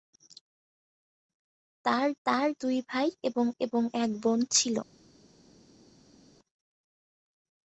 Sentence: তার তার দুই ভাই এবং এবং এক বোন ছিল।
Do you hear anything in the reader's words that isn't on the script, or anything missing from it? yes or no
no